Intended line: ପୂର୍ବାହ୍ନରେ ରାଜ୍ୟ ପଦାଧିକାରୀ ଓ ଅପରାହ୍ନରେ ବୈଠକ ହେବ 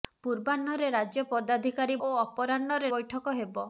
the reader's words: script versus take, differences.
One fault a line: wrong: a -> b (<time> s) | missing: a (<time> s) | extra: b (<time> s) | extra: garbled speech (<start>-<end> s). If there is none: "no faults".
no faults